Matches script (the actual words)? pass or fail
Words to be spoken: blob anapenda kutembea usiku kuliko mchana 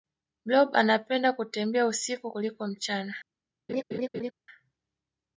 pass